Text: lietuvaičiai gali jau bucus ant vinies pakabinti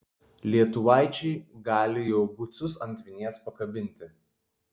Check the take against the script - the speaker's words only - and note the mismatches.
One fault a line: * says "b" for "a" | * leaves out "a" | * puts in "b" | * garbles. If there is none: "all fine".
all fine